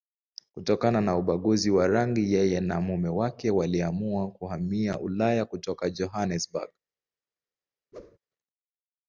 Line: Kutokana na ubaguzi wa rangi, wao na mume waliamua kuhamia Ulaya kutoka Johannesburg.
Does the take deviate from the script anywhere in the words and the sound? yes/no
yes